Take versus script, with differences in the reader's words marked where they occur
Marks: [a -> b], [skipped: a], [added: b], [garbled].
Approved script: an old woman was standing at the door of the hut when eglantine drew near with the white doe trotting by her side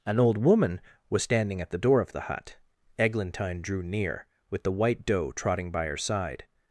an old woman was standing at the door of the hut [skipped: when] eglantine drew near with the white doe trotting by her side